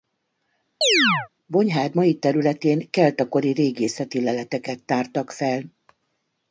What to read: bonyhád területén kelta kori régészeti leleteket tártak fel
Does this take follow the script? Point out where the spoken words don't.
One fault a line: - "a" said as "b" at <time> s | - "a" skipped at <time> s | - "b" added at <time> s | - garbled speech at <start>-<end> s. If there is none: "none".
- "mai" added at 1.9 s